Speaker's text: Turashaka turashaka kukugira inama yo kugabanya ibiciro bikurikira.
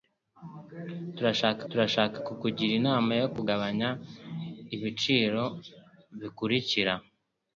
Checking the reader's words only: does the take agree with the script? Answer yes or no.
yes